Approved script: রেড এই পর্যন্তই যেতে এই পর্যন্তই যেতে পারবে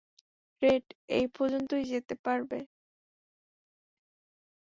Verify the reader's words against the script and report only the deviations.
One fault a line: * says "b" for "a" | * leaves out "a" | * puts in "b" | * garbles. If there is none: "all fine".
* leaves out "এই পর্যন্তই যেতে"